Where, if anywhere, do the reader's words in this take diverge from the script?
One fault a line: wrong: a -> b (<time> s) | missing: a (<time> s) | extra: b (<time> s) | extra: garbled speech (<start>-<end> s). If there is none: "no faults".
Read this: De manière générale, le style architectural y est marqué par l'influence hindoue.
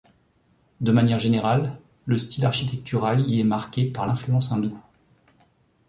no faults